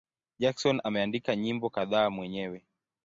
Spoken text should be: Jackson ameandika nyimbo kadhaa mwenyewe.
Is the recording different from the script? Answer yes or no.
no